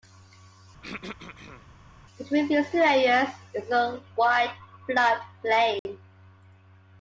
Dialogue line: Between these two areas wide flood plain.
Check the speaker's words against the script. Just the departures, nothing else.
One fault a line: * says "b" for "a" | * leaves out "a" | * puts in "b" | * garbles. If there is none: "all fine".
* puts in "is a"